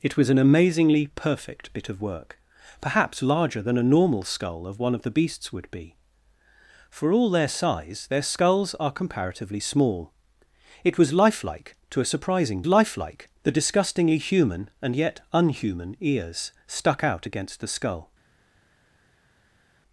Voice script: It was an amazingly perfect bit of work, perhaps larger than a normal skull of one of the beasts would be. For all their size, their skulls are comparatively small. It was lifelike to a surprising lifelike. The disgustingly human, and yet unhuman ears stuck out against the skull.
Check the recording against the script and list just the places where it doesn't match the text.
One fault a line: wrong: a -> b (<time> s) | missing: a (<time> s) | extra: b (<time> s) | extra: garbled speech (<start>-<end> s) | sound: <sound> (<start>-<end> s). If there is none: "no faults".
no faults